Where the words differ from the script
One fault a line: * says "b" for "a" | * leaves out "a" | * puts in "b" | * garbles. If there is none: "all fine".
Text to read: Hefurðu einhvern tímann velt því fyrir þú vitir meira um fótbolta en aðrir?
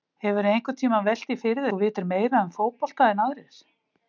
all fine